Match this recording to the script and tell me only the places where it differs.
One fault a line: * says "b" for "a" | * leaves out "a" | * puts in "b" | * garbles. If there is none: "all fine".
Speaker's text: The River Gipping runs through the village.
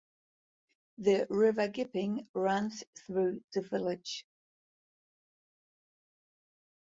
all fine